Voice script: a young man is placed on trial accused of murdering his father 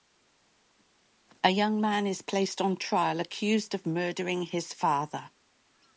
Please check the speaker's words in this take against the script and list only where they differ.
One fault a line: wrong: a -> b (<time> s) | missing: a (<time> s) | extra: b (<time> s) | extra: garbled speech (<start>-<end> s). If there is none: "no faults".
no faults